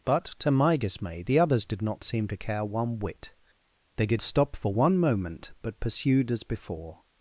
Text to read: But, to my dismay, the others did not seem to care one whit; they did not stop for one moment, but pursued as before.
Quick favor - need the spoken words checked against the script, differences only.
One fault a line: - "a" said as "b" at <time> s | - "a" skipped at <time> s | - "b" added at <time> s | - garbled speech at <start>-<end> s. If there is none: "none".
- "not" skipped at 4.2 s